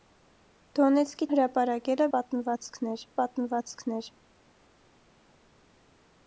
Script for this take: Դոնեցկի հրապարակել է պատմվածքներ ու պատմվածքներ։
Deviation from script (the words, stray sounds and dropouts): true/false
false